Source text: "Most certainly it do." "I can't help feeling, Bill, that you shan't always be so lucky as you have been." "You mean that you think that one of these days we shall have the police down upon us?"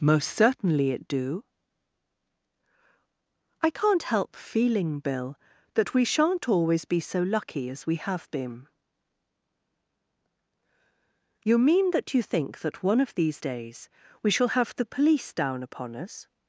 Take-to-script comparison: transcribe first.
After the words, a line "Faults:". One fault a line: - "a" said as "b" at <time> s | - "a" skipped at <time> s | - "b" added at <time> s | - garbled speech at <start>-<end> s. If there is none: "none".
"Most certainly it do." "I can't help feeling, Bill, that we shan't always be so lucky as we have been." "You mean that you think that one of these days we shall have the police down upon us?"
Faults:
- "you" said as "we" at 5.9 s
- "you" said as "we" at 7.8 s